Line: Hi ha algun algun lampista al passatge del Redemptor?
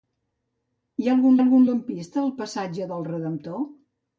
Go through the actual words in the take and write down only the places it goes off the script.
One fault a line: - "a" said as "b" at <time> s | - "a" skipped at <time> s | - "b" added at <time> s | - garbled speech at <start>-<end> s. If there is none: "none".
none